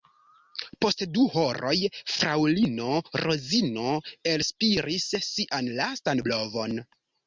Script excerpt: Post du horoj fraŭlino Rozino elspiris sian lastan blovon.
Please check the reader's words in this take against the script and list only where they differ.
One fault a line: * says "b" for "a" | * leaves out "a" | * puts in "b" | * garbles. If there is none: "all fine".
all fine